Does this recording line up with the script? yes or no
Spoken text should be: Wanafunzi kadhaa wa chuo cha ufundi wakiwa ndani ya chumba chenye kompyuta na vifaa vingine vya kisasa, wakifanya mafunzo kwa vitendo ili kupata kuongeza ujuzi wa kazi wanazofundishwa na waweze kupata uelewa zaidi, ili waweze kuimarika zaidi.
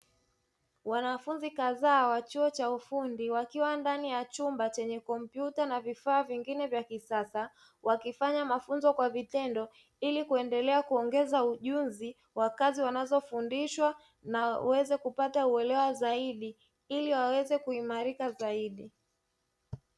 no